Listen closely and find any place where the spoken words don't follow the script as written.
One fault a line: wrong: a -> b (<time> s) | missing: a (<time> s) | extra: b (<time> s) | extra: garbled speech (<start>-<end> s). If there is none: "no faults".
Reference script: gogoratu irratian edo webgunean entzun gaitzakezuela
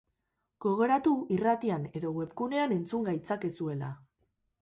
no faults